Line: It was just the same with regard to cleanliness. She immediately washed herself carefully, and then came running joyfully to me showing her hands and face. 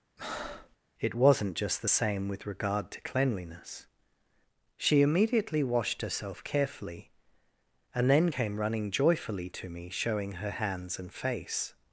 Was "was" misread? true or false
true